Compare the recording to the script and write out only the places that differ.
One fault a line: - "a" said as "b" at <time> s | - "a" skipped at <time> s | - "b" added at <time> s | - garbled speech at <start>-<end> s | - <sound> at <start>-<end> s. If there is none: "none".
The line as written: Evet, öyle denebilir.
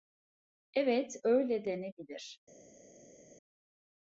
none